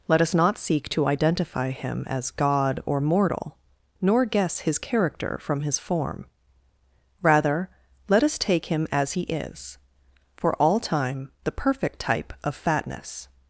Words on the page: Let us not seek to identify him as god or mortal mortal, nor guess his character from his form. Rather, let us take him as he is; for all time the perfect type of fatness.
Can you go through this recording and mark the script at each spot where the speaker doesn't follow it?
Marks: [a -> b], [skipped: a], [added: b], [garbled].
Let us not seek to identify him as god or mortal [skipped: mortal,] nor guess his character from his form. Rather, let us take him as he is; for all time the perfect type of fatness.